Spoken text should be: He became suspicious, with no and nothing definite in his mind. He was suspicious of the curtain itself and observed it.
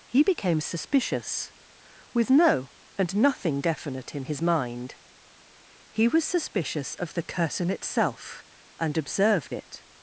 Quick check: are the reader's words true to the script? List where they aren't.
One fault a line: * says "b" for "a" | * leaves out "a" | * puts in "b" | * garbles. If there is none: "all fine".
all fine